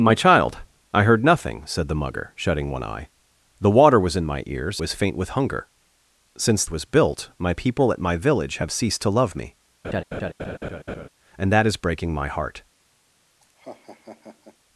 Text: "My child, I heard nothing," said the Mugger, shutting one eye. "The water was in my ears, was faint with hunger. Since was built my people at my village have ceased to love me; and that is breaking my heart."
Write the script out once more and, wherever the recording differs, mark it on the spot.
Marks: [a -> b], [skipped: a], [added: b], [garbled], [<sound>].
"My child, I heard nothing," said the Mugger, shutting one eye. "The water was in my ears, was faint with hunger. Since was built my people at my village have ceased to love me; [laugh] and that is breaking my heart." [laugh]